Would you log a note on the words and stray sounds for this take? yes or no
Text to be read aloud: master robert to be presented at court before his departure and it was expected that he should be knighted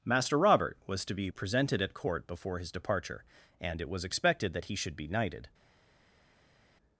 yes